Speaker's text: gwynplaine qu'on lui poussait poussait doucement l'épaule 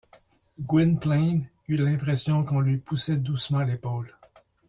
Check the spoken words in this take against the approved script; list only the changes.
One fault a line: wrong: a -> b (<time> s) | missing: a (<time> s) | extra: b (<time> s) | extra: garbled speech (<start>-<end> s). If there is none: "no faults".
extra: eut l'impression (1.7 s)
missing: poussait (3.2 s)